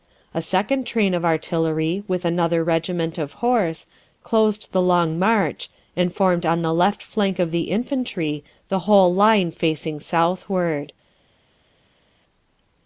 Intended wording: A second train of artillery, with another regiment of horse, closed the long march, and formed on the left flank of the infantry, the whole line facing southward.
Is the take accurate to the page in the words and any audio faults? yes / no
yes